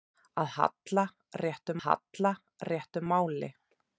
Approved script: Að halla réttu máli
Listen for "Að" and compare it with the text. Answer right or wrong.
right